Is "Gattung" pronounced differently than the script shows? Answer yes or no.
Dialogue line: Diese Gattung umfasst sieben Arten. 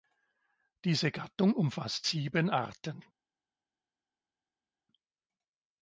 no